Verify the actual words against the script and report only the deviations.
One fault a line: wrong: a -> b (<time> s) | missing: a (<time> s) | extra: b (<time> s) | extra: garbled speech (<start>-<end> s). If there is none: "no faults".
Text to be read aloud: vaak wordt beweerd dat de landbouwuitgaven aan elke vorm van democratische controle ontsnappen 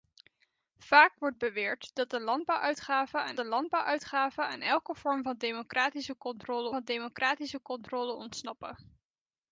extra: de landbouwuitgaven aan (3.3 s)
extra: van democratische controle (6.7 s)